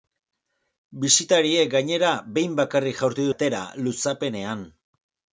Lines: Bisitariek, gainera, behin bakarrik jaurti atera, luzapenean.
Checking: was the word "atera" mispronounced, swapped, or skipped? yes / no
no